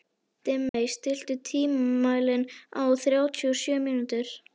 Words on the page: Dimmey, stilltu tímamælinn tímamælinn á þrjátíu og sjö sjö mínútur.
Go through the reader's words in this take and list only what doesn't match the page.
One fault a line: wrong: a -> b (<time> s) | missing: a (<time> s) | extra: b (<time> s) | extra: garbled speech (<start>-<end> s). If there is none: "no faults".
missing: tímamælinn (2.5 s)
missing: sjö (3.8 s)